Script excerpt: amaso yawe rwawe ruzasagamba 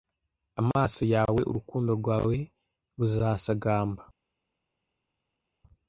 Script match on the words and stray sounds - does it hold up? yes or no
no